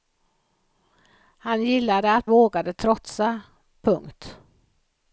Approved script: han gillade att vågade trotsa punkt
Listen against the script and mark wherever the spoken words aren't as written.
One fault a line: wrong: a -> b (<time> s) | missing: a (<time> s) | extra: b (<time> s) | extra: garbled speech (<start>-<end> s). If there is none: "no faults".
no faults